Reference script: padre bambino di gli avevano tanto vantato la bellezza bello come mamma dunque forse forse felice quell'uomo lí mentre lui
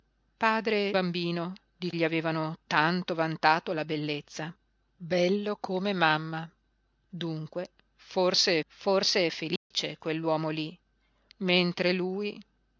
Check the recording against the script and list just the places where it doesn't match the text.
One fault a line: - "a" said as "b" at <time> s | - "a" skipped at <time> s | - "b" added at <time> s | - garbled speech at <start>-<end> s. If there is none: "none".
none